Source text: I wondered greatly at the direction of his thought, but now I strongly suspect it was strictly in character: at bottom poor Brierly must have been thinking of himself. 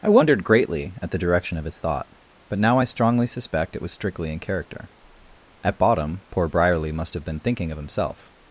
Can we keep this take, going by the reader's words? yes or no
yes